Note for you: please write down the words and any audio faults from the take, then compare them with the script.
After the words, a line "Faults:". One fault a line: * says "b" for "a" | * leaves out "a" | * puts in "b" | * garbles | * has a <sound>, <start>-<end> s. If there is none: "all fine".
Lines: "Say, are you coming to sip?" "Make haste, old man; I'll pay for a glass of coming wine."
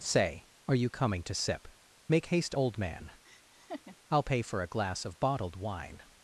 "Say, are you coming to sip?" "Make haste, old man; I'll pay for a glass of bottled wine."
Faults:
* has a laugh, 3.2-4.0 s
* says "bottled" for "coming"